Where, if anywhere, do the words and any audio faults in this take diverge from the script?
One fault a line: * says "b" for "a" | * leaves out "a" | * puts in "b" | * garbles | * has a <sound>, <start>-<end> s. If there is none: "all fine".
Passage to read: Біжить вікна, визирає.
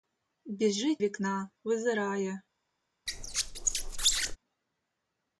* has a squeak, 3.1-4.4 s